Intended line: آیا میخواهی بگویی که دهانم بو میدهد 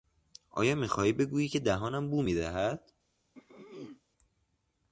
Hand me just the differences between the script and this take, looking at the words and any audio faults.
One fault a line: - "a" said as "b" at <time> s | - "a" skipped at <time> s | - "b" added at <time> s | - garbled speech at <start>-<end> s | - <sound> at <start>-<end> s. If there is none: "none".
- throat clearing at 3.3-4.0 s